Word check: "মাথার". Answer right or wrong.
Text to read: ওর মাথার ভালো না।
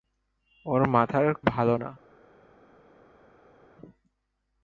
right